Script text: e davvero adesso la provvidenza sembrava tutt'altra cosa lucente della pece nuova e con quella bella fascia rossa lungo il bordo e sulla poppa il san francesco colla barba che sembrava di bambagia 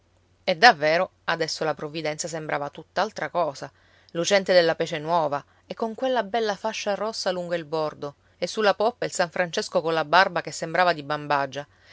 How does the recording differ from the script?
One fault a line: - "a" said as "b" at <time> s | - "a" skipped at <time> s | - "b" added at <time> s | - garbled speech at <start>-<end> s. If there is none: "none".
none